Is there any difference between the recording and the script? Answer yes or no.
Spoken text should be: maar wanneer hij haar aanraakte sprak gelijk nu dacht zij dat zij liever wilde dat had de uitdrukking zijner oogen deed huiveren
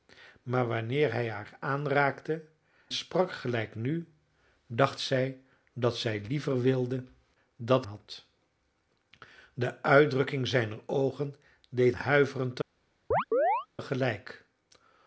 no